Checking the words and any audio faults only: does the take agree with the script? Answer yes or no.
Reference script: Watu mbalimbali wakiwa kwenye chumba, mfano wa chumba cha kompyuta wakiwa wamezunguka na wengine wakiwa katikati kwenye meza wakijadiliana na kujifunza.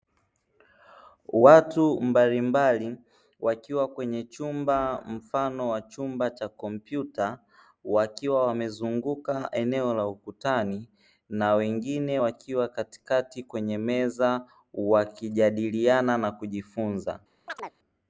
no